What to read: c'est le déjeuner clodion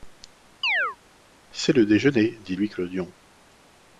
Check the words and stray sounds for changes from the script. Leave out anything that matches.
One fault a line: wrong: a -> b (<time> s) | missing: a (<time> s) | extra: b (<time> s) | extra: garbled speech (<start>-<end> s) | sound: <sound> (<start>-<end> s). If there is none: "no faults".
sound: chirp (0.6-1.0 s)
extra: dit louis (2.4 s)